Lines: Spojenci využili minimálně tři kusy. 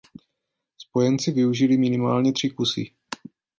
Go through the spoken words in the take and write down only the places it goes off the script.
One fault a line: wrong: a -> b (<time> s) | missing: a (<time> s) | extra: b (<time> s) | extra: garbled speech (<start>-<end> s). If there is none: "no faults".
no faults